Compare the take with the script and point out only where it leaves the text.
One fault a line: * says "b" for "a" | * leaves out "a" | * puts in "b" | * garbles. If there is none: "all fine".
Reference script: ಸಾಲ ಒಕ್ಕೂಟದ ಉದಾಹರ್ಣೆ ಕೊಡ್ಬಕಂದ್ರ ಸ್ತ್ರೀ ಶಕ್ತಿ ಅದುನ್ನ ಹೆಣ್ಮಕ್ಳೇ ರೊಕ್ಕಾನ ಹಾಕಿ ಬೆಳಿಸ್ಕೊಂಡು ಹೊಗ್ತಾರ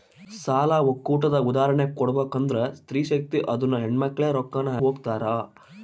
* leaves out "ಹಾಕಿ ಬೆಳಿಸ್ಕೊಂಡು"